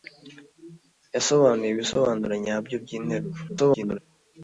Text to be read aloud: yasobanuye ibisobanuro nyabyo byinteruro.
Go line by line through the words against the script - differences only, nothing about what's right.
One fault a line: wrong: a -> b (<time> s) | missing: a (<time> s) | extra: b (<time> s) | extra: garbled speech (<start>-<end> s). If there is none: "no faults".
extra: garbled speech (3.5-4.0 s)